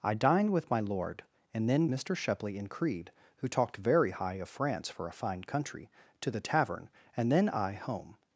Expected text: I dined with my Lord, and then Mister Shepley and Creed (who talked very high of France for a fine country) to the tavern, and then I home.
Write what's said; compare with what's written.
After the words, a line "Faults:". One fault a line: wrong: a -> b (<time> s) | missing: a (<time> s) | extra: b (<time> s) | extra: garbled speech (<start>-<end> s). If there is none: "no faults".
I dined with my Lord, and then Mister Shepley and Creed (who talked very high of France for a fine country) to the tavern, and then I home.
Faults:
no faults